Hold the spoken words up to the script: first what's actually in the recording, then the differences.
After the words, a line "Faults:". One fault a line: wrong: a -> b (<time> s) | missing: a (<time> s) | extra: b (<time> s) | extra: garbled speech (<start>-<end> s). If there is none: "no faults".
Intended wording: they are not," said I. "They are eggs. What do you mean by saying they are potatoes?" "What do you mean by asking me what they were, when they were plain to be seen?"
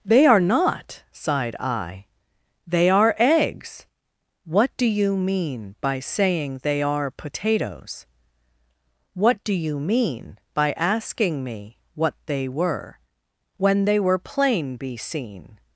they are not," sighed I. "They are eggs. What do you mean by saying they are potatoes?" "What do you mean by asking me what they were, when they were plain be seen?"
Faults:
wrong: said -> sighed (1.1 s)
missing: to (14.8 s)